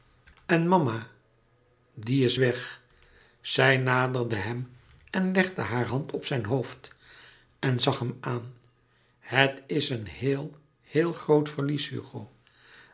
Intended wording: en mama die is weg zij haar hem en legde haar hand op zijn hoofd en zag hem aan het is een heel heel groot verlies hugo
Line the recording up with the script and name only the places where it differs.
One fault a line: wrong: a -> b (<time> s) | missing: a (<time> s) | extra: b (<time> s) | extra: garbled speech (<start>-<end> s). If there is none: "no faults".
wrong: haar -> naderde (3.8 s)